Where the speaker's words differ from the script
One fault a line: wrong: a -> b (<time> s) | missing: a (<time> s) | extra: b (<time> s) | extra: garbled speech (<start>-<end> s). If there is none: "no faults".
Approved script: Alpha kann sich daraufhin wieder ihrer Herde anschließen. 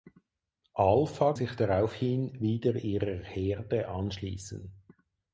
missing: kann (1.3 s)